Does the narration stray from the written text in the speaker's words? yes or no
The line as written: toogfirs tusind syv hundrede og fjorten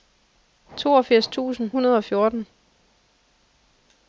yes